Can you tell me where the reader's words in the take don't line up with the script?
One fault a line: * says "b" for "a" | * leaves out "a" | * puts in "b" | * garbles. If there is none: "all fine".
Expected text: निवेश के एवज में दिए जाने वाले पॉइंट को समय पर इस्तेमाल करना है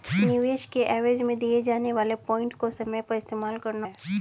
all fine